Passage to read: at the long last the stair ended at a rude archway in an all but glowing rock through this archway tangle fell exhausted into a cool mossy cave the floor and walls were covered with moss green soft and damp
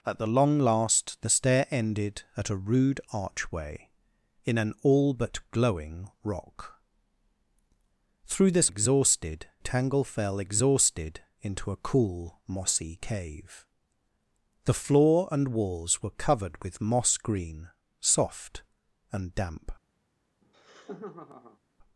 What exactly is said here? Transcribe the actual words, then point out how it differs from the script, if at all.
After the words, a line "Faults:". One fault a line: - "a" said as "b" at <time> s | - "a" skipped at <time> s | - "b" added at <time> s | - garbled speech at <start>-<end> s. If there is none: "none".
at the long last the stair ended at a rude archway in an all but glowing rock through this exhausted tangle fell exhausted into a cool mossy cave the floor and walls were covered with moss green soft and damp
Faults:
- "archway" said as "exhausted" at 8.7 s